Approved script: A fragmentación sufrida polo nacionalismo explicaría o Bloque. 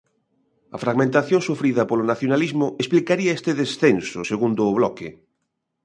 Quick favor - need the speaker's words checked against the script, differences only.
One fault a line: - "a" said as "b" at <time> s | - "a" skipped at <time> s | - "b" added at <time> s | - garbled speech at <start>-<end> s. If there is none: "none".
- "este descenso segundo" added at 3.4 s